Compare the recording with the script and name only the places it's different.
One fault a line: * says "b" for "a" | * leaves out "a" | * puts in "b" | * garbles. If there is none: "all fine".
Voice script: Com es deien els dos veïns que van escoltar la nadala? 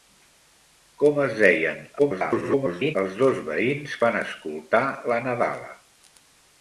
* garbles
* leaves out "que"